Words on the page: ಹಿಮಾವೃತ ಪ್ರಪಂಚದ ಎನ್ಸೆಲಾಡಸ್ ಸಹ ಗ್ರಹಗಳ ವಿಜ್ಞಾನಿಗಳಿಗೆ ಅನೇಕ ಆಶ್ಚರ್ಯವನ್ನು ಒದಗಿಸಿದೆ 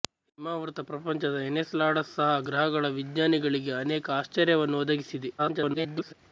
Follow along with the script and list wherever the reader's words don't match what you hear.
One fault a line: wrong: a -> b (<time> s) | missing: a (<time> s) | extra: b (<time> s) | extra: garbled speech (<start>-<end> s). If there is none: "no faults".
extra: garbled speech (5.4-6.1 s)